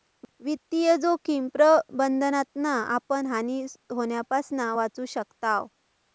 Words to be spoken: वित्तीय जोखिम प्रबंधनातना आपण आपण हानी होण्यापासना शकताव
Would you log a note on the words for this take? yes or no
yes